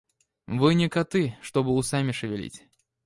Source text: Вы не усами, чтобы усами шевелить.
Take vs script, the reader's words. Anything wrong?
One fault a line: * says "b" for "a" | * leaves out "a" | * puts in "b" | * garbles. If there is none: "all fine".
* says "коты" for "усами"